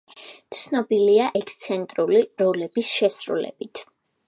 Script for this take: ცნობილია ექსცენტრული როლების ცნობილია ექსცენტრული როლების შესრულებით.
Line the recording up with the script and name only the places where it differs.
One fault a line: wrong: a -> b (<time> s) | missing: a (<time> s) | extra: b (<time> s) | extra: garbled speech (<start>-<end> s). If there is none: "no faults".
missing: ცნობილია ექსცენტრული როლების (2.9 s)